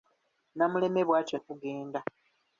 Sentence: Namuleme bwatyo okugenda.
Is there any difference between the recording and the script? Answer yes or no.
no